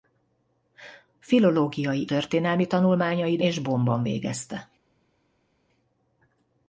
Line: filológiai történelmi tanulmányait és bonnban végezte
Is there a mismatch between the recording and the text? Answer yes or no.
no